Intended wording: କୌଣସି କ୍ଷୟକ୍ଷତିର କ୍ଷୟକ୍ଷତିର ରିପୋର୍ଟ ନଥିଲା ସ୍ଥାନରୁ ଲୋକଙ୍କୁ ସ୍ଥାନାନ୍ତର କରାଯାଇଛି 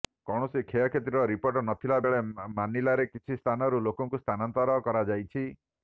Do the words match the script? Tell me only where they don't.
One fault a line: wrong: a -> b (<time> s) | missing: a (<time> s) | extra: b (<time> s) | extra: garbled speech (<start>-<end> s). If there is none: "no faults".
missing: କ୍ଷୟକ୍ଷତିର (1.2 s)
extra: ବେଳେ ମାନିଲାରେ କିଛି (2.0 s)